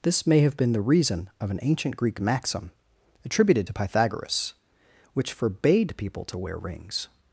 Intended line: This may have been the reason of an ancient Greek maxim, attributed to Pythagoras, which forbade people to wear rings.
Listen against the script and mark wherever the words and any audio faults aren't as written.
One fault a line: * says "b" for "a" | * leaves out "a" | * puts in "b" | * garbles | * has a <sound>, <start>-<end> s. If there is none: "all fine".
all fine